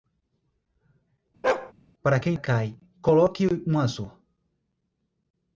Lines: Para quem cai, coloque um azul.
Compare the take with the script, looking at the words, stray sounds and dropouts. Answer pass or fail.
fail